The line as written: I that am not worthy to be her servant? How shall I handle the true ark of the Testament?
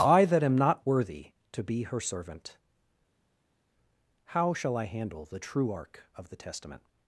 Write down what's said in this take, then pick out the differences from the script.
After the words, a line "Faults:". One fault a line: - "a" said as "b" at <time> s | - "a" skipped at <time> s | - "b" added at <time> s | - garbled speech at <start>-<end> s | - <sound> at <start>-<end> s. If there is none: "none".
I that am not worthy to be her servant? How shall I handle the true ark of the Testament?
Faults:
none